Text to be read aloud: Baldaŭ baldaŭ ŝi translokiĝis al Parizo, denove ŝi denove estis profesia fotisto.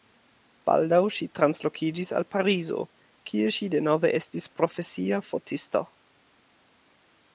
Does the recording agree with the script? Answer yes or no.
no